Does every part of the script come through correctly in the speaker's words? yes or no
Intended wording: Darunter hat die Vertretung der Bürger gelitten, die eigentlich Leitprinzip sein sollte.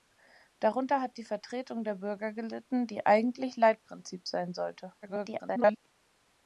no